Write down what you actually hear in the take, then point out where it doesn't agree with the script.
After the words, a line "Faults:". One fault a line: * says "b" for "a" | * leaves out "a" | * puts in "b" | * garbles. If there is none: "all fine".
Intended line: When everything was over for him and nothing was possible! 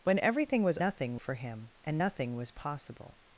When everything was nothing for him and nothing was possible!
Faults:
* says "nothing" for "over"